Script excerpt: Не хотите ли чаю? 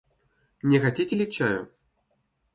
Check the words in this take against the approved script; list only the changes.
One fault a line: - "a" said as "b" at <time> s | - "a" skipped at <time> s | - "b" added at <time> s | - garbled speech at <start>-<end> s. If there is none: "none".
none